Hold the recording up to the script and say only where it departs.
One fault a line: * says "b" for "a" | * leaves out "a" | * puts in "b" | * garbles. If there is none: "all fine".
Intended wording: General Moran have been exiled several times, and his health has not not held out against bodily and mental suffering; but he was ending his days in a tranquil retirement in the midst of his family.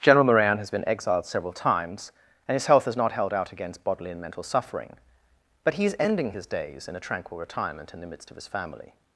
* says "has" for "have"
* leaves out "not"
* says "is" for "was"